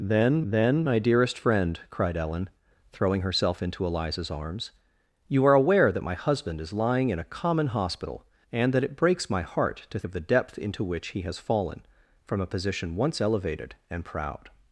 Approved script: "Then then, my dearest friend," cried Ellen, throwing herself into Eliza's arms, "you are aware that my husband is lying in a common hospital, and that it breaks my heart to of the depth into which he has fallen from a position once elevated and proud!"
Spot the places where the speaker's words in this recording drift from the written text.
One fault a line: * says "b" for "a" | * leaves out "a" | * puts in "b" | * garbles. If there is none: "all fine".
all fine